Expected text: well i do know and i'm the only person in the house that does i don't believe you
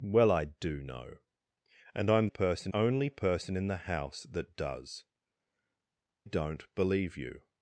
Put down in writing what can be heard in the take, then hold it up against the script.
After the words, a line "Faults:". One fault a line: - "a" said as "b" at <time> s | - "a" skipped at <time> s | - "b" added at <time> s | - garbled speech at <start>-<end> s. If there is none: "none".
well i do know and i'm person only person in the house that does don't believe you
Faults:
- "the" said as "person" at 2.2 s
- "i" skipped at 5.1 s